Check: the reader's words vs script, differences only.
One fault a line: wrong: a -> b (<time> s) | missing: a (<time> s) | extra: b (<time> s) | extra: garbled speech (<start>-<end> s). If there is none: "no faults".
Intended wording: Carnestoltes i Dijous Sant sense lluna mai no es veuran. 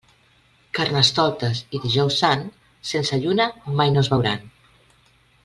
no faults